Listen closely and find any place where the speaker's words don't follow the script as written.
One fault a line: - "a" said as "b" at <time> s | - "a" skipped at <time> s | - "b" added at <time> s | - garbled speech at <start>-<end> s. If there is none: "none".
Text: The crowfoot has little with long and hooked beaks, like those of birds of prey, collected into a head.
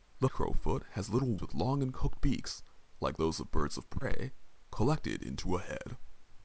none